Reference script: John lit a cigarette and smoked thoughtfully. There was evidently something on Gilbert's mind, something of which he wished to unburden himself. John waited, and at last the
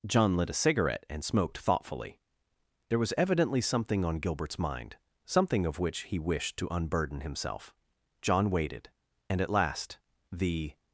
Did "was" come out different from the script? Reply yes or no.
no